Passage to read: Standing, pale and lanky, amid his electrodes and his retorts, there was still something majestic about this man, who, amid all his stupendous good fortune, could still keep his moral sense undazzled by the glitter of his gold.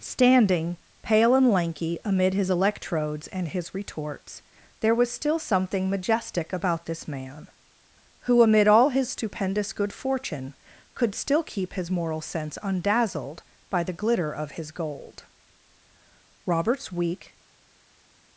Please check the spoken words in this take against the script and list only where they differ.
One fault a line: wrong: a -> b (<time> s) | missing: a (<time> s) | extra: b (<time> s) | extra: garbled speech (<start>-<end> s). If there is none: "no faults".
extra: Robert's weak (16.5 s)